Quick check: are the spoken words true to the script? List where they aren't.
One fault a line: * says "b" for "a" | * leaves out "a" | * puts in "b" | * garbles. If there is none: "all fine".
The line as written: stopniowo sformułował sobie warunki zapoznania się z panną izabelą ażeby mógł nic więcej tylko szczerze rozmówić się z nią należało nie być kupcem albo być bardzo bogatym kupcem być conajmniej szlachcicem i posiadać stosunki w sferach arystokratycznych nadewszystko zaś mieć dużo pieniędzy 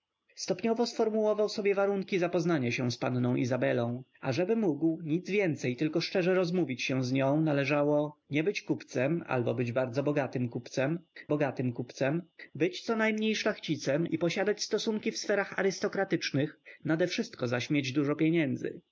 * puts in "bogatym kupcem"